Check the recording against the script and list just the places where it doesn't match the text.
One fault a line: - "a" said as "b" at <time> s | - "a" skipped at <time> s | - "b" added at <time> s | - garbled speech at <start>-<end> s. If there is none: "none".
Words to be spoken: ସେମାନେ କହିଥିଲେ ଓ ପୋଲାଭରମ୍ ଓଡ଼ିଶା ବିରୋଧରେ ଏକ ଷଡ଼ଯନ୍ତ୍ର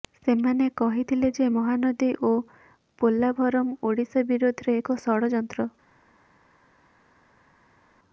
- "ଯେ ମହାନଦୀ" added at 1.4 s